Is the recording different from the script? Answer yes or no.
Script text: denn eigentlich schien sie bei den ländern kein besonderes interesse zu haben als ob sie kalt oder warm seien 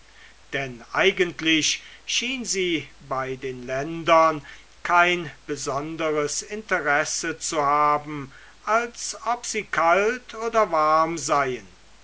no